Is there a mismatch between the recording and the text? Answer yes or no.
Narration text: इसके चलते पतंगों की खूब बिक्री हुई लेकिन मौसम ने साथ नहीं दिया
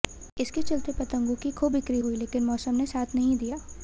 no